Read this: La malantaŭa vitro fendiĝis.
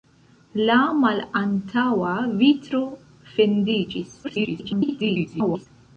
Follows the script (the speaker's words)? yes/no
no